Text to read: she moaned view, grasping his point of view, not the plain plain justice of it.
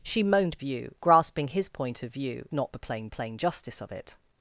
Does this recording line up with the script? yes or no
yes